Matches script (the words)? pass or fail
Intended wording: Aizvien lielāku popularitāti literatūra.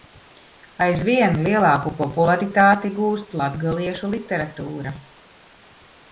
fail